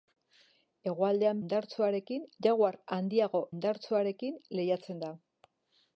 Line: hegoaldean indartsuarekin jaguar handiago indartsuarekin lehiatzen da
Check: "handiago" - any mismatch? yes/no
no